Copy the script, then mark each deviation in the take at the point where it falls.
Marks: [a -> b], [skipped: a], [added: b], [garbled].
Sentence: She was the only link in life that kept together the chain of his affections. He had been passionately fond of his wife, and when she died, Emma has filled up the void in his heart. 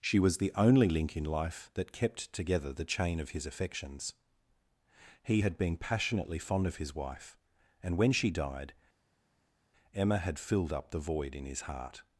She was the only link in life that kept together the chain of his affections. He had been passionately fond of his wife, and when she died, Emma [has -> had] filled up the void in his heart.